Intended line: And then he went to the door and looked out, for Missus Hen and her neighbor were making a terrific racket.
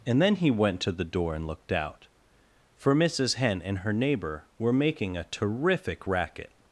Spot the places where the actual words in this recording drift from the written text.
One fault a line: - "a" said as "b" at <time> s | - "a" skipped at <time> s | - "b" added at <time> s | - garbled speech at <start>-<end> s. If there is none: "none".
none